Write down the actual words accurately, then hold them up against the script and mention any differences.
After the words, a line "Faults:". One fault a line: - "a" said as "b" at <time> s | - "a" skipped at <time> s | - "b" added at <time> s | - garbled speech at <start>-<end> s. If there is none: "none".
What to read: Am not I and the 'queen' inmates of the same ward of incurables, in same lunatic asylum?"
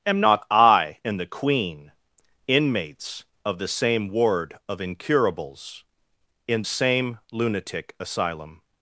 Am not I and the 'queen' inmates of the same ward of incurables, in same lunatic asylum?"
Faults:
none